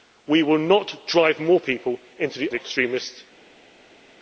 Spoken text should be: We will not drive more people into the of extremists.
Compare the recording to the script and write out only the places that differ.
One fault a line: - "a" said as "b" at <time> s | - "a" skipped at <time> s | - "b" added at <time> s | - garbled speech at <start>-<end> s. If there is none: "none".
none